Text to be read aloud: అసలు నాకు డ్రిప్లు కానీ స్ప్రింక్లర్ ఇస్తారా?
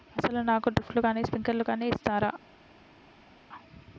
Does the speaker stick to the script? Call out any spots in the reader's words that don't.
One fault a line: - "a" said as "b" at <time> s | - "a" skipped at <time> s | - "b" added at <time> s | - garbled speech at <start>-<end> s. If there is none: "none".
- "కానీ" added at 1.7 s